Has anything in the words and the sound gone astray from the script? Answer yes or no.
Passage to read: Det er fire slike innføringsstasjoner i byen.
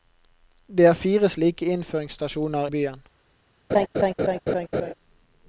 yes